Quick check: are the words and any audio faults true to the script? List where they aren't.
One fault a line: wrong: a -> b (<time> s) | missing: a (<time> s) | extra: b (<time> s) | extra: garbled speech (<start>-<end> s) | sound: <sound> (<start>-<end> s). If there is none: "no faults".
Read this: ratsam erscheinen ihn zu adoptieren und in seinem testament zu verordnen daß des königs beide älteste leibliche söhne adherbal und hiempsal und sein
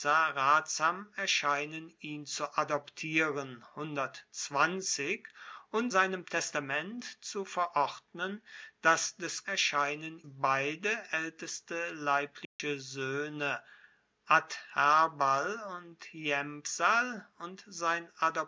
missing: in (5.9 s)
wrong: königs -> erscheinen (9.4 s)
sound: dropout (12.4-12.6 s)